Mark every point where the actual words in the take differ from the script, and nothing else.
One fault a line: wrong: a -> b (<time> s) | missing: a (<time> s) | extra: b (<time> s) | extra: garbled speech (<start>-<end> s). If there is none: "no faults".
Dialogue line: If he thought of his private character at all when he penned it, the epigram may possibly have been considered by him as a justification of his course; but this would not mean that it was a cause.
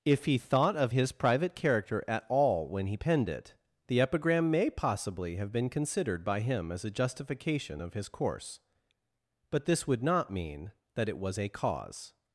no faults